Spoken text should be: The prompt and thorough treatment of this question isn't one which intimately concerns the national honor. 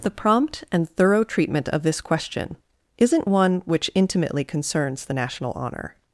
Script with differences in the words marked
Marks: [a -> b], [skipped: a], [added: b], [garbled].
The prompt and thorough treatment of this question isn't one which intimately concerns the national honor.